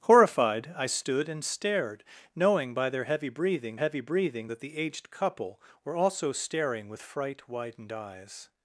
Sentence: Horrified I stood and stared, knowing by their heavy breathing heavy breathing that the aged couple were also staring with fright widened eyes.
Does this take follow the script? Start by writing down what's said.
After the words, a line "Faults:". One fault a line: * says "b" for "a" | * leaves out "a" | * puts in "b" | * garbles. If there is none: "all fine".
Horrified I stood and stared, knowing by their heavy breathing heavy breathing that the aged couple were also staring with fright widened eyes.
Faults:
all fine